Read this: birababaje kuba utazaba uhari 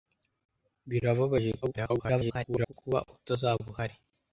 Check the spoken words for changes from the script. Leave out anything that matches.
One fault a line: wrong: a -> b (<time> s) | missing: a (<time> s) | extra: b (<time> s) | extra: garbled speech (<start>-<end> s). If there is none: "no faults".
extra: garbled speech (1.6-2.7 s)